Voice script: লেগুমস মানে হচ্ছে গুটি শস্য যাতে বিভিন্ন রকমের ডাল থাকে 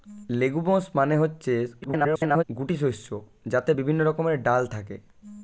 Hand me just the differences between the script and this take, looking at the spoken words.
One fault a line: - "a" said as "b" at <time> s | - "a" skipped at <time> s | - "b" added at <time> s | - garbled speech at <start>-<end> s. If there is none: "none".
- garbled speech at 1.8-2.4 s